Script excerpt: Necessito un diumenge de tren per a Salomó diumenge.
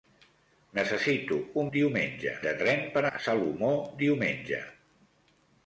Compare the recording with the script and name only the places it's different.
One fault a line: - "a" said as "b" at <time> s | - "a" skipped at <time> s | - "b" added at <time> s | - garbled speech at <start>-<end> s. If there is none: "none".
none